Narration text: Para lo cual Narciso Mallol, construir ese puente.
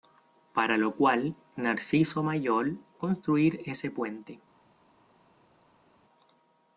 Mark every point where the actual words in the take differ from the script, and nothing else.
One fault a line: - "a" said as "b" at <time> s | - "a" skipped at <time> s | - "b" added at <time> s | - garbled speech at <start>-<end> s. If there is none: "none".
none